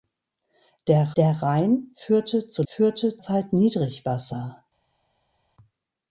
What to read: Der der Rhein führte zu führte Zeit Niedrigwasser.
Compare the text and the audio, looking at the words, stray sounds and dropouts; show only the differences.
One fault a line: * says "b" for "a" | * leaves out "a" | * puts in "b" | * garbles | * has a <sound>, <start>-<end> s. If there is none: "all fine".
all fine